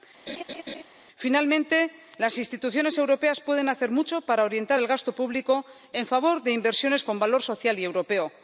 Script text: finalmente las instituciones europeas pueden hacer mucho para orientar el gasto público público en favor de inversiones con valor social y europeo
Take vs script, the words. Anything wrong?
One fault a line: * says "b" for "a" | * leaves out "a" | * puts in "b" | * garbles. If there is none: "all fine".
* leaves out "público"